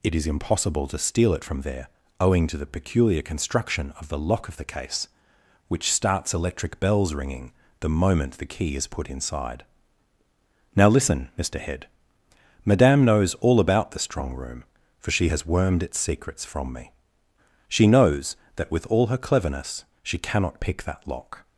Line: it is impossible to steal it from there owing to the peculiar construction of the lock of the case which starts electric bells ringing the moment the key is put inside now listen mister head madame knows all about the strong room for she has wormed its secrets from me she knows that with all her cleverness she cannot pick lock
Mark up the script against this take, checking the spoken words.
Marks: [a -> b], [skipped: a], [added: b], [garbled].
it is impossible to steal it from there owing to the peculiar construction of the lock of the case which starts electric bells ringing the moment the key is put inside now listen mister head madame knows all about the strong room for she has wormed its secrets from me she knows that with all her cleverness she cannot pick [added: that] lock